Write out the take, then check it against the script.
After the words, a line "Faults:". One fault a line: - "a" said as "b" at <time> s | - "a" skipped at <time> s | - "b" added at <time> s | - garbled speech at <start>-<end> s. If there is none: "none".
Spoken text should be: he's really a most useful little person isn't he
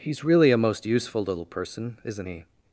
he's really a most useful little person isn't he
Faults:
none